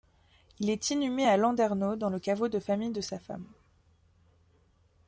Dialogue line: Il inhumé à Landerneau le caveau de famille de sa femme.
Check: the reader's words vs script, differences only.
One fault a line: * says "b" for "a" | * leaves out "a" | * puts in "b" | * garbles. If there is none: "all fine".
* puts in "est"
* puts in "dans"